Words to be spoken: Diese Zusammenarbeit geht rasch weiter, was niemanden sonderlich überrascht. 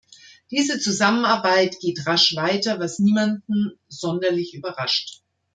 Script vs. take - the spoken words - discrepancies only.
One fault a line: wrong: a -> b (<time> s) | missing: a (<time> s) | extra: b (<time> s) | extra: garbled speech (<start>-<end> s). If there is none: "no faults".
no faults